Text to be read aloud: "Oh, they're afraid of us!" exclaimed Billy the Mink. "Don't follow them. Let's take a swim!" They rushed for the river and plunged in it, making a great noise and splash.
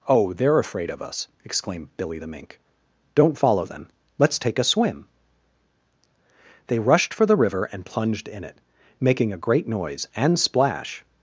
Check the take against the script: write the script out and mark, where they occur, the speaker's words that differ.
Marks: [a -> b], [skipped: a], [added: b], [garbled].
"Oh, they're afraid of us!" exclaimed Billy the Mink. "Don't follow them. Let's take a swim!" They rushed for the river and plunged in it, making a great noise and splash.